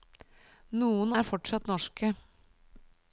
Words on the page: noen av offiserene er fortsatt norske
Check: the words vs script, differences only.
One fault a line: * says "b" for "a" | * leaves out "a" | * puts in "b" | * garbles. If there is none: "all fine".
* leaves out "av offiserene"